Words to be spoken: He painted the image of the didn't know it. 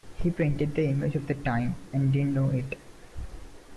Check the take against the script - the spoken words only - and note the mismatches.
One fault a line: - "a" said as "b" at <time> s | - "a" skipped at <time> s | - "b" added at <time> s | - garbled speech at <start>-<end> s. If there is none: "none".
- "time and" added at 1.4 s